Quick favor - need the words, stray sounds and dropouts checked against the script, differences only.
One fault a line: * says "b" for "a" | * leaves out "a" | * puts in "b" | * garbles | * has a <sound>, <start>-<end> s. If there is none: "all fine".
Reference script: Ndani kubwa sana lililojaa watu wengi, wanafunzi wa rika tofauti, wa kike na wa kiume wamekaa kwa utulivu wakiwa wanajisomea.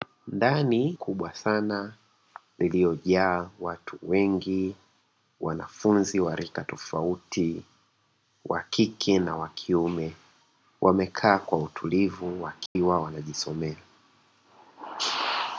* has a dropout, 12.7-12.8 s